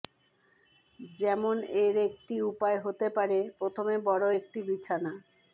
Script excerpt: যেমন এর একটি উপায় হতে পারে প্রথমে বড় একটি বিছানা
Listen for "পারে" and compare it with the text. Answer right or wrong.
right